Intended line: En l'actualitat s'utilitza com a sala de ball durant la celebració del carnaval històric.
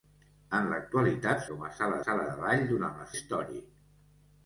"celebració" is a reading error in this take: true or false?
true